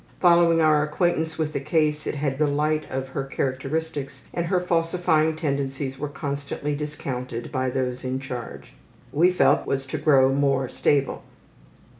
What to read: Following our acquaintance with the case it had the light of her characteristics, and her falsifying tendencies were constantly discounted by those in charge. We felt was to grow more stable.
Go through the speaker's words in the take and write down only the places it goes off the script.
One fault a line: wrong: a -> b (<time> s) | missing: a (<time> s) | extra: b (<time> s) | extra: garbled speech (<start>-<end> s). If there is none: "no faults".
no faults